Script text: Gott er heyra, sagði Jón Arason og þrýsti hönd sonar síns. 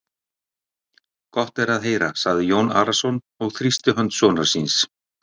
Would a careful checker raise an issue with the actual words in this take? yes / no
yes